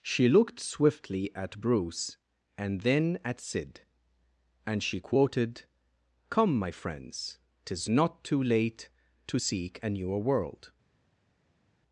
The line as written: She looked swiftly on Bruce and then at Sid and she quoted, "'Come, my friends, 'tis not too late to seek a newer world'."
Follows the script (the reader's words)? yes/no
no